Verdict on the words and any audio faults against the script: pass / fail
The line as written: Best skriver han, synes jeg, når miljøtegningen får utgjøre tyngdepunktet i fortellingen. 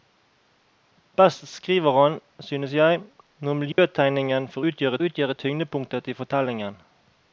fail